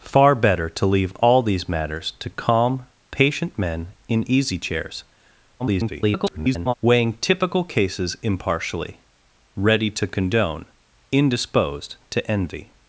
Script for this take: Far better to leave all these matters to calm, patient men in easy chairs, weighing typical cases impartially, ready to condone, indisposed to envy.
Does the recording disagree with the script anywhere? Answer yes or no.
yes